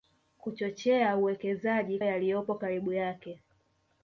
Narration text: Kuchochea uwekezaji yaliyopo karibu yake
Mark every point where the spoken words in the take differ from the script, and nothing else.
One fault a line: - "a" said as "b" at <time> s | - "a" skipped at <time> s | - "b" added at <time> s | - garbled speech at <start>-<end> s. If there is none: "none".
none